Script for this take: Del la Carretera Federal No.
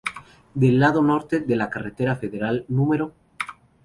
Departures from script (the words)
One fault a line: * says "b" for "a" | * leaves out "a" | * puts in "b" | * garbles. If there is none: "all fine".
* puts in "lado norte de"